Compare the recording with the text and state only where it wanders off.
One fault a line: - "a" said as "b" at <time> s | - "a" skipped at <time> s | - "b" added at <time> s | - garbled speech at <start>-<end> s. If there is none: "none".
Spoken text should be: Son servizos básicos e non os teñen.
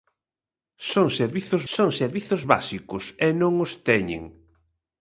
- "son servizos" added at 1.7 s